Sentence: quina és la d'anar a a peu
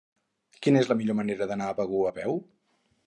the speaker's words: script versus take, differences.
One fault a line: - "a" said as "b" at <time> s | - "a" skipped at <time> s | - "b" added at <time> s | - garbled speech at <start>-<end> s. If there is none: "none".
- "millor manera" added at 1.0 s
- "begur" added at 1.8 s